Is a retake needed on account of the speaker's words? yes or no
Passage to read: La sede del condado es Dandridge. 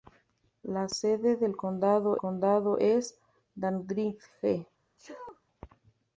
yes